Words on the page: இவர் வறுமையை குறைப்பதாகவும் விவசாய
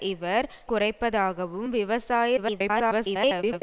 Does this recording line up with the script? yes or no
no